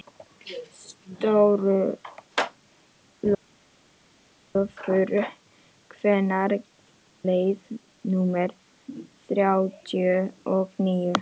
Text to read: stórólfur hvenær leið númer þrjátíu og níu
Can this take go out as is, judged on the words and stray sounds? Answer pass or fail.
pass